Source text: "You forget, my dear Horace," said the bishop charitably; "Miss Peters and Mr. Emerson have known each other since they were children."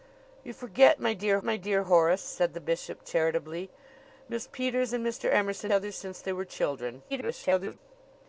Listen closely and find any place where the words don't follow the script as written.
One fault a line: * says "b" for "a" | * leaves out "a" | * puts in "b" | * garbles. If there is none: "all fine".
* puts in "my dear"
* leaves out "have known each"
* garbles